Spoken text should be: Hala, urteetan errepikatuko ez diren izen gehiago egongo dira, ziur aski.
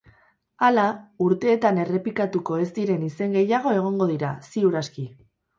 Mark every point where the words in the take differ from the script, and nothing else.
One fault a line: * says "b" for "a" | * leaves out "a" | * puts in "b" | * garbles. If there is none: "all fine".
all fine